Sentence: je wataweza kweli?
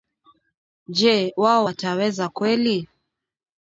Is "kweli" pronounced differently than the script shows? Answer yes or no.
no